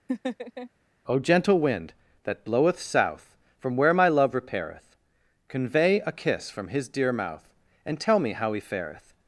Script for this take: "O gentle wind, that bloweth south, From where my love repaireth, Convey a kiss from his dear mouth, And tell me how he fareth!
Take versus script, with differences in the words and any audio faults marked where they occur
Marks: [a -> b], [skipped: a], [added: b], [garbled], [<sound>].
[laugh] "O gentle wind, that bloweth south, From where my love repaireth, Convey a kiss from his dear mouth, And tell me how he fareth!